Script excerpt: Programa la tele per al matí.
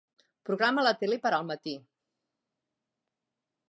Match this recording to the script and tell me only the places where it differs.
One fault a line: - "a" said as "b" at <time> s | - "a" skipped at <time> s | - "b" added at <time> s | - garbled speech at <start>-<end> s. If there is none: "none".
none